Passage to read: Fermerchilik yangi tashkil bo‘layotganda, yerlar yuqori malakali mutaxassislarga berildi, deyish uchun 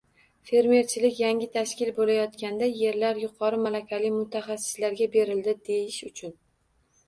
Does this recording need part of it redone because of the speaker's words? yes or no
no